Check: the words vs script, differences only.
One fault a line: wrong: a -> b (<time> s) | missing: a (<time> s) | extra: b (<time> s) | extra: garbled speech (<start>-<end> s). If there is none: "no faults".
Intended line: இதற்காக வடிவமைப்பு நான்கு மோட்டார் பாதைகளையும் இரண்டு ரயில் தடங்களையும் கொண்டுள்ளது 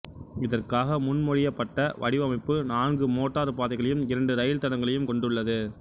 extra: முன்மொழியப்பட்ட (1.0 s)